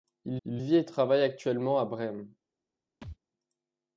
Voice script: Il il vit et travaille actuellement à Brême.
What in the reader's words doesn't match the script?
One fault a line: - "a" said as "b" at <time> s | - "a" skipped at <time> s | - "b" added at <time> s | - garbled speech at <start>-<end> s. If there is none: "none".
none